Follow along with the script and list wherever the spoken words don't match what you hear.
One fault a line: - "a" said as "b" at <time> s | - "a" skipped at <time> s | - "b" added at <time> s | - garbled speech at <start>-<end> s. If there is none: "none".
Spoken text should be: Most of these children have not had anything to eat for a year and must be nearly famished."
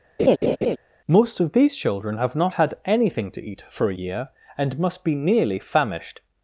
none